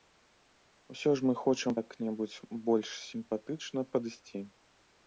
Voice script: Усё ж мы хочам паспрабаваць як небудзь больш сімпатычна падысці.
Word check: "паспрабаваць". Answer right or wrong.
wrong